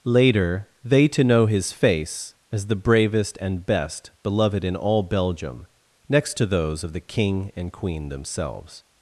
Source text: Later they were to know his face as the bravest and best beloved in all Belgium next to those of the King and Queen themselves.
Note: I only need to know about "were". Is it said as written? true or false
false